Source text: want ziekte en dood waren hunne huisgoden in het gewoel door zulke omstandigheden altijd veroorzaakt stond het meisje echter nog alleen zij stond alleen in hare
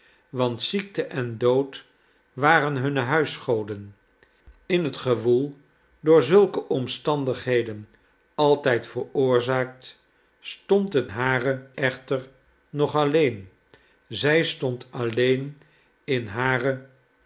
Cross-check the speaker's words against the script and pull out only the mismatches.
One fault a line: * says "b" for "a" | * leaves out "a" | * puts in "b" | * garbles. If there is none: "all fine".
* says "hare" for "meisje"